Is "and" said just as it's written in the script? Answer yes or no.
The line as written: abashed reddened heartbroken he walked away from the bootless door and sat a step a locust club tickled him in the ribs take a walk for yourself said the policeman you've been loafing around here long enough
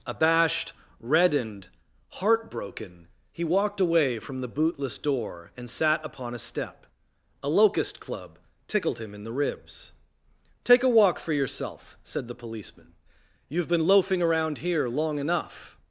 yes